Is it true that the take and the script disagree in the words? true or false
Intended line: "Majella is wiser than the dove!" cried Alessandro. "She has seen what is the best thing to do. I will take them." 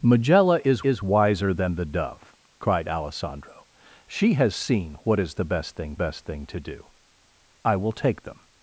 true